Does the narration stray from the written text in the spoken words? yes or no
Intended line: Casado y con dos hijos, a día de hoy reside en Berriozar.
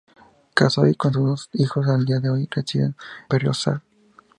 yes